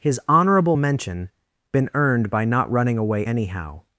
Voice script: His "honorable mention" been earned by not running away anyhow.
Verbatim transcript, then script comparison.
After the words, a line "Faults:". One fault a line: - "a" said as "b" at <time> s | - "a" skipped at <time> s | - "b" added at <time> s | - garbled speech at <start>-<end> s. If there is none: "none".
His "honorable mention" been earned by not running away anyhow.
Faults:
none